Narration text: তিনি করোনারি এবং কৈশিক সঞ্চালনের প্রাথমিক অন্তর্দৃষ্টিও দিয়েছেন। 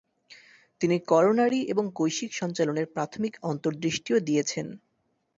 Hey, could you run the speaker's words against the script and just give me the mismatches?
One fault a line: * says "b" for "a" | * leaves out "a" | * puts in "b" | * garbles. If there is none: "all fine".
all fine